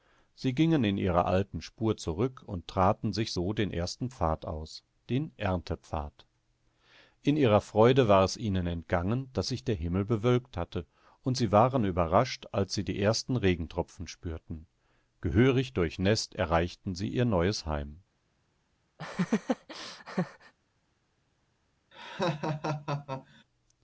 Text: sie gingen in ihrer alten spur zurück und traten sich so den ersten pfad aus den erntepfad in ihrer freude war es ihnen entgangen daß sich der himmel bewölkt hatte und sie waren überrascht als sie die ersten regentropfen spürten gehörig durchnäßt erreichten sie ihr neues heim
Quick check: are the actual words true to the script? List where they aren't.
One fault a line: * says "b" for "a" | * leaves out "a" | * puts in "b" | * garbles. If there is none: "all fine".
all fine